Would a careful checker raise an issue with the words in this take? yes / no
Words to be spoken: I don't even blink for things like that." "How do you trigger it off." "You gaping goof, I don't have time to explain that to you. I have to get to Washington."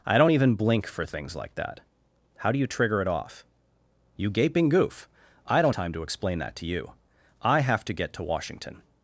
yes